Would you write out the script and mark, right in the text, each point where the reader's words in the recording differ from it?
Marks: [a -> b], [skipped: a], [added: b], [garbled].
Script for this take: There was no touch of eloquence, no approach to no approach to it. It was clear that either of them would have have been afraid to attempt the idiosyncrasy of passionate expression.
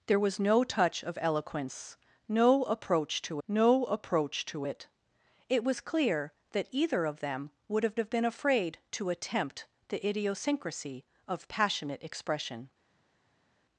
There was no touch of eloquence, no approach to no approach to it. It was clear that either of them would have have been afraid to attempt the idiosyncrasy of passionate expression.